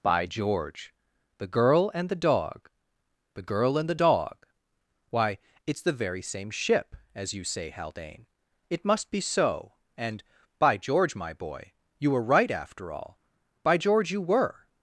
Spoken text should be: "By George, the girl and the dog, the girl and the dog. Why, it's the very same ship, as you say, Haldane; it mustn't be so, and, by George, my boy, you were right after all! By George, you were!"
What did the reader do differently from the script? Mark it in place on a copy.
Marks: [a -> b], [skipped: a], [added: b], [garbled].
"By George, the girl and the dog, the girl and the dog. Why, it's the very same ship, as you say, Haldane; it [mustn't -> must] be so, and, by George, my boy, you were right after all! By George, you were!"